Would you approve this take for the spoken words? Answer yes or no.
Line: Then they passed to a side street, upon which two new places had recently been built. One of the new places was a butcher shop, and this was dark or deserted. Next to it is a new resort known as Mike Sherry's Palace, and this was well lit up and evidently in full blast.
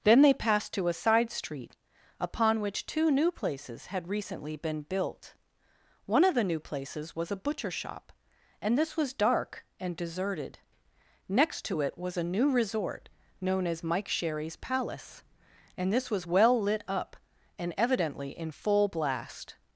no